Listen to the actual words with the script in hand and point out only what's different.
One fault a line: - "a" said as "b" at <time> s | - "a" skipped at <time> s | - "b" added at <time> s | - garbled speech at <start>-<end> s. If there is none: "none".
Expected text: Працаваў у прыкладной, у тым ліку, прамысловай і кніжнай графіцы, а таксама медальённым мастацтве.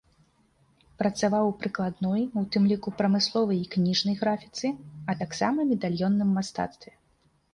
none